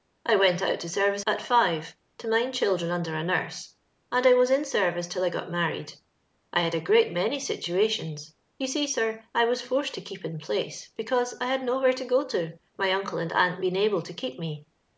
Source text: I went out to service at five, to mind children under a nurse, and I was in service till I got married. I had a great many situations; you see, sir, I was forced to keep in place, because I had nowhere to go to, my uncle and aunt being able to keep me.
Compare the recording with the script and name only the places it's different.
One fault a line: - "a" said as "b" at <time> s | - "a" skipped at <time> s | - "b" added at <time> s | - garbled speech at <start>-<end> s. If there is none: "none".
none